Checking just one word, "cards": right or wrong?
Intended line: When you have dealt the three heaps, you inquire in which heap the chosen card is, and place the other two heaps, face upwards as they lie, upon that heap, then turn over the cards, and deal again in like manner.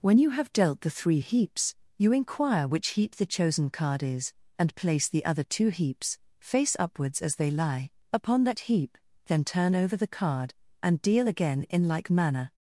wrong